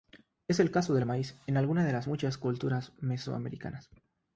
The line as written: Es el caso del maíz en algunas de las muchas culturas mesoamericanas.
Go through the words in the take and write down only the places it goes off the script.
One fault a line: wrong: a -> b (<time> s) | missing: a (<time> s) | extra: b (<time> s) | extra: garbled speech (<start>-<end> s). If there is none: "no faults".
no faults